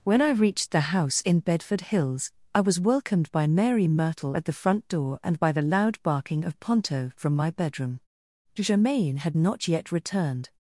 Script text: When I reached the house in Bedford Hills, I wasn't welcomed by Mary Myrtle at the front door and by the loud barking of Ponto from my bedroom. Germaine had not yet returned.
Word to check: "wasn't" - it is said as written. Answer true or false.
false